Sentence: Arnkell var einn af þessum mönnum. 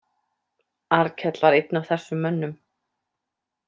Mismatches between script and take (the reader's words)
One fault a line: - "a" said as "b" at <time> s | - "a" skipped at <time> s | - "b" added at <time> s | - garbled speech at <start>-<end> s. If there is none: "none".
none